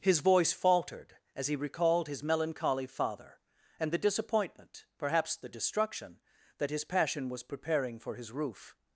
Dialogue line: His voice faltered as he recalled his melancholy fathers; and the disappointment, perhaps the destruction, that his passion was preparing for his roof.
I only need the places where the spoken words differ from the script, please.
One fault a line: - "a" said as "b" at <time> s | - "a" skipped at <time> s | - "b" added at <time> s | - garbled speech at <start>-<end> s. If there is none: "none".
- "fathers" said as "father" at 2.9 s